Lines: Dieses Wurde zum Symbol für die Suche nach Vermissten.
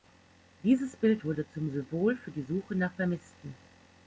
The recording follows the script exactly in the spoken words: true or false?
false